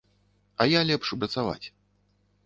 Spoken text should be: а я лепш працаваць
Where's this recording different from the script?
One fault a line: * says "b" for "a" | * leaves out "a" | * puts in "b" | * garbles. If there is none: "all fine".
all fine